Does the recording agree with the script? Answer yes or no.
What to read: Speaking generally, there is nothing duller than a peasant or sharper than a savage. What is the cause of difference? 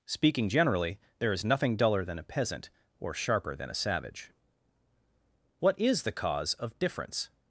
yes